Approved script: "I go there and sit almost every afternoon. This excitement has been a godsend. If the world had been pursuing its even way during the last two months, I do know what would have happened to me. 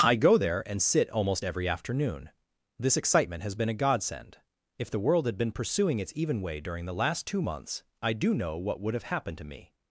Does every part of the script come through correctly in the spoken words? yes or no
yes